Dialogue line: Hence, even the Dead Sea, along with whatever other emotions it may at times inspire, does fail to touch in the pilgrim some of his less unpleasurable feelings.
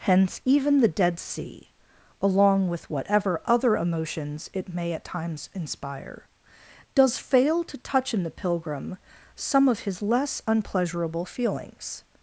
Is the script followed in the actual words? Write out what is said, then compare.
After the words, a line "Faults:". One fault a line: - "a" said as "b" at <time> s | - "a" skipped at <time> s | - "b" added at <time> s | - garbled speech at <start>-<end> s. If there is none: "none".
Hence, even the Dead Sea, along with whatever other emotions it may at times inspire, does fail to touch in the pilgrim some of his less unpleasurable feelings.
Faults:
none